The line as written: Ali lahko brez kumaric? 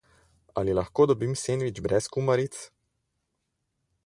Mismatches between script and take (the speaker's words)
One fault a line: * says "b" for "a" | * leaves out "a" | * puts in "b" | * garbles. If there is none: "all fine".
* puts in "dobim sendvič"